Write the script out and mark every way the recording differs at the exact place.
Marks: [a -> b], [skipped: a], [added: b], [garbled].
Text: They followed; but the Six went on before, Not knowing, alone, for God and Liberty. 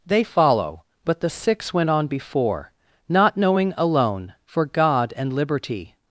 They [followed; -> follow] but the Six went on before, Not knowing, alone, for God and Liberty.